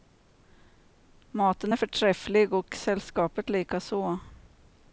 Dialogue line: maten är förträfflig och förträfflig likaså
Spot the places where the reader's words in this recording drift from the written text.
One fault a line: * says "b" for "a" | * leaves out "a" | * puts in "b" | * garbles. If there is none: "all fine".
* says "sällskapet" for "förträfflig"